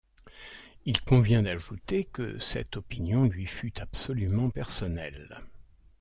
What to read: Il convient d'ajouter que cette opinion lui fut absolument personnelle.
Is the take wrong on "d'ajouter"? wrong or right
right